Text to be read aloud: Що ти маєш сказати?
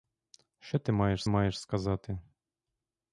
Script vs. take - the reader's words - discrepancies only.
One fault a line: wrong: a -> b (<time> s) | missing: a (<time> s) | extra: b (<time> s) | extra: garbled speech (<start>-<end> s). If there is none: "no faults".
extra: маєш (1.3 s)